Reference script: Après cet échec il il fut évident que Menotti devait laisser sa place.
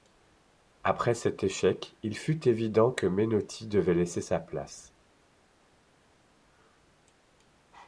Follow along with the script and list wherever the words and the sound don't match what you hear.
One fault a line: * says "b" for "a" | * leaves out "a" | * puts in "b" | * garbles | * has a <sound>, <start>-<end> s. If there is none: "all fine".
* leaves out "il"